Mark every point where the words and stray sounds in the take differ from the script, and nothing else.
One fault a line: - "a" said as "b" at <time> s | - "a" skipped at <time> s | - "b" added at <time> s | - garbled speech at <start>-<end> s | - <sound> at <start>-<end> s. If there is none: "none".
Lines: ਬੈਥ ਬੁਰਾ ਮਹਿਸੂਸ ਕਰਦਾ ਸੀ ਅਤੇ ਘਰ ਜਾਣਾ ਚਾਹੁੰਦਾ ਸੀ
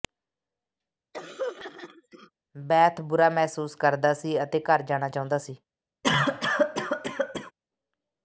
- throat clearing at 1.1-2.3 s
- cough at 6.0-7.5 s